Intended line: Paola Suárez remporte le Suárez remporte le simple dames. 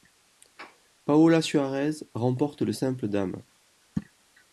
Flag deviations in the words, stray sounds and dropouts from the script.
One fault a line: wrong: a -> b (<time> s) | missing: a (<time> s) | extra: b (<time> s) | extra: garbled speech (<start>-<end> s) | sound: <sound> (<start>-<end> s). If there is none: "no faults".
missing: Suárez remporte le (2.7 s)